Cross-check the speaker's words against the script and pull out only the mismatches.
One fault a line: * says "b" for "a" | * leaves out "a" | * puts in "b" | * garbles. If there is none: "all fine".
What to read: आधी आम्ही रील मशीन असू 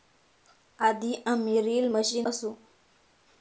all fine